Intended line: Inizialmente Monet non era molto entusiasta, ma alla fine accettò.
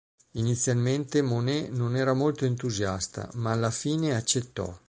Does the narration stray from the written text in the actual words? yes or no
no